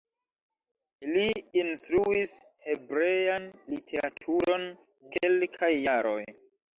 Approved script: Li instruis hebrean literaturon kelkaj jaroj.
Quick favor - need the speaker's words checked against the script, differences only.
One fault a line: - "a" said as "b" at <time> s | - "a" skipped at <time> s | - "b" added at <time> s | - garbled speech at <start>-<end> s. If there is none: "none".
none